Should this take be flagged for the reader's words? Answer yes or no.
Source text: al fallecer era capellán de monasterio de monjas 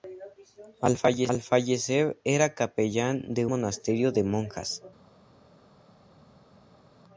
no